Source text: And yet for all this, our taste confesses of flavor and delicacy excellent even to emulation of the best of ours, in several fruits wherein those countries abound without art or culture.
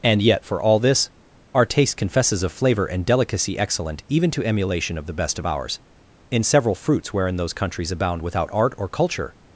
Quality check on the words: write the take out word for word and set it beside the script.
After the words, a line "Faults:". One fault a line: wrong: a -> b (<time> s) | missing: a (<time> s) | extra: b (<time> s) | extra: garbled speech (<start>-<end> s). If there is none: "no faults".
And yet for all this, our taste confesses of flavor and delicacy excellent even to emulation of the best of ours, in several fruits wherein those countries abound without art or culture.
Faults:
no faults